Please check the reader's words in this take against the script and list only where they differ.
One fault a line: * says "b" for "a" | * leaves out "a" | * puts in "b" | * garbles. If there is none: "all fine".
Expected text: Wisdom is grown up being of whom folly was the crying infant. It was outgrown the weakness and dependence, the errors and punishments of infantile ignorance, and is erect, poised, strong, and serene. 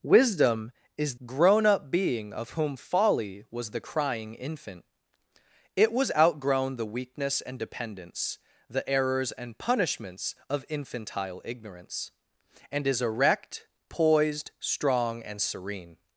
all fine